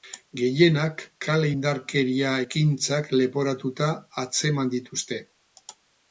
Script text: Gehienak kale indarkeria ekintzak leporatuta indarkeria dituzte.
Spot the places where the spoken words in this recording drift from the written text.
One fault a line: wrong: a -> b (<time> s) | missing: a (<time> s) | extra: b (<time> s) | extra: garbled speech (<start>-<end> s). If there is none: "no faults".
wrong: indarkeria -> atzeman (4.3 s)